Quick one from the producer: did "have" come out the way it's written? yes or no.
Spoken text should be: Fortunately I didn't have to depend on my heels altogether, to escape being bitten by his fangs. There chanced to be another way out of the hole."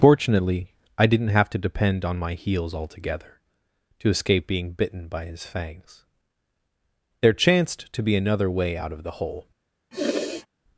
yes